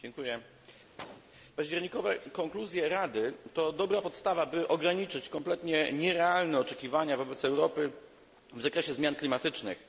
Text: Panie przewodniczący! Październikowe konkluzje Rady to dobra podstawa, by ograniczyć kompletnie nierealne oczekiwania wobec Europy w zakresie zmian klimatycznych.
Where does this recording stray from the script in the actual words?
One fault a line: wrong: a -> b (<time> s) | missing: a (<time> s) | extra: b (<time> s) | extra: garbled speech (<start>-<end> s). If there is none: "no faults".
no faults